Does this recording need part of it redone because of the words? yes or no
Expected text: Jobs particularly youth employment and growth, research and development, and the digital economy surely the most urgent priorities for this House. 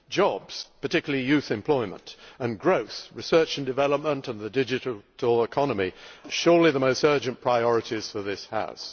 no